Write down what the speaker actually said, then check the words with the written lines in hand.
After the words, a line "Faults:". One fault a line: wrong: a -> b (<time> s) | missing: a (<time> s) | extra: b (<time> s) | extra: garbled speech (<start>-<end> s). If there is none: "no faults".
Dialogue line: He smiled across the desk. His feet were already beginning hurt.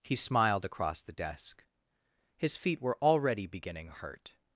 He smiled across the desk. His feet were already beginning hurt.
Faults:
no faults